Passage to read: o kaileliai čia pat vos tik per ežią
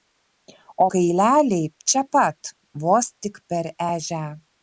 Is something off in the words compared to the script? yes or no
no